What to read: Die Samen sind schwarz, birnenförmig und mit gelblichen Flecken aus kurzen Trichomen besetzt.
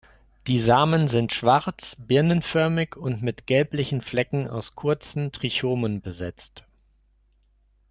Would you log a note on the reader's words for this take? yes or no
no